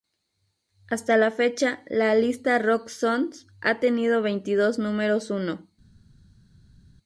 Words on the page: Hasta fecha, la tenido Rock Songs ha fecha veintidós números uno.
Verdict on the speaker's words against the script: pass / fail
fail